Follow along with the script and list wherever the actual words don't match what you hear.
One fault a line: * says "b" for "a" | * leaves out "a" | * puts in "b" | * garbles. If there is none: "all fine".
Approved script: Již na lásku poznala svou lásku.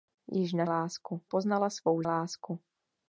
all fine